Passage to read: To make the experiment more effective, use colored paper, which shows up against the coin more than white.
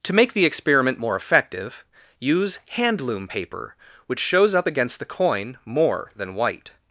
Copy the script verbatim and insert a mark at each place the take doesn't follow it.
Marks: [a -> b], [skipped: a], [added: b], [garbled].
To make the experiment more effective, use [colored -> handloom] paper, which shows up against the coin more than white.